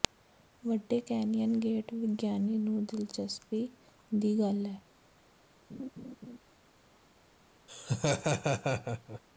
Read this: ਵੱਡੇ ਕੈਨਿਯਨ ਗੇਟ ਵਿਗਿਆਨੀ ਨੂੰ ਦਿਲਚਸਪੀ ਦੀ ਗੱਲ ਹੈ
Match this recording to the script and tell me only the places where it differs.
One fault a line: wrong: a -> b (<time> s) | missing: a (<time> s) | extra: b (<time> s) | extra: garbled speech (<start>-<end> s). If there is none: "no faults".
no faults